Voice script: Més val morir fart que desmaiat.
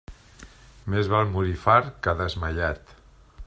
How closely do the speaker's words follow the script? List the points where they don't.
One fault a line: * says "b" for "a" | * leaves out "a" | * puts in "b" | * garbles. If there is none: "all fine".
all fine